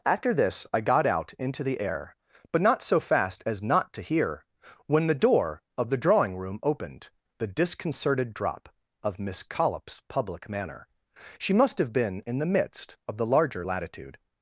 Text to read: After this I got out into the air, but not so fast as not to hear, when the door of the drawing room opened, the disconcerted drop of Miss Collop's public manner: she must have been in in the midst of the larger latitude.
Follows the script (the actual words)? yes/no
no